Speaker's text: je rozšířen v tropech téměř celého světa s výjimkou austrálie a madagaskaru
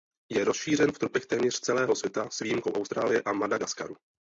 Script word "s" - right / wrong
right